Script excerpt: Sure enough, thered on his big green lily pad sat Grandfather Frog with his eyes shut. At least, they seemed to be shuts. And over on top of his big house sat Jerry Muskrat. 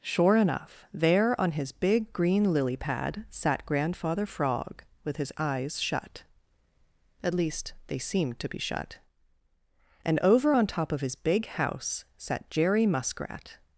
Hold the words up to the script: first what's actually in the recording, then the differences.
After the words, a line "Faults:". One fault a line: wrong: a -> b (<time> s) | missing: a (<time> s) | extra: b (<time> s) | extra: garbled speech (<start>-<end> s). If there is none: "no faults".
Sure enough, there on his big green lily pad sat Grandfather Frog with his eyes shut. At least, they seemed to be shut. And over on top of his big house sat Jerry Muskrat.
Faults:
wrong: thered -> there (0.9 s)
wrong: shuts -> shut (8.6 s)